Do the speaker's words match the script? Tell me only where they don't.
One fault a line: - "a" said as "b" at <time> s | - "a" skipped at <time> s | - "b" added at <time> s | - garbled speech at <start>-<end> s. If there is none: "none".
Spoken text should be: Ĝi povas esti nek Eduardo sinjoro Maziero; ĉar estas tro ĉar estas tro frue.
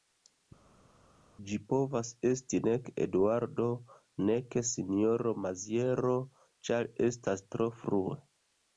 - "nek" added at 4.3 s
- "ĉar estas tro" skipped at 7.7 s